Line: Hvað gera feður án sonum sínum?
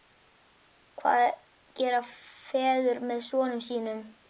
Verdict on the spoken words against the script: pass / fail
fail